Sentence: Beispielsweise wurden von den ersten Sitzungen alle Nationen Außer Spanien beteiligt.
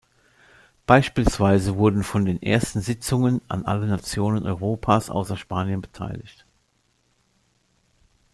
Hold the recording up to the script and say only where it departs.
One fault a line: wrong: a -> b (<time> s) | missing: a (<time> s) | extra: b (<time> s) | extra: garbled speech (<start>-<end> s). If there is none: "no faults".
extra: an (3.5 s)
extra: Europas (4.5 s)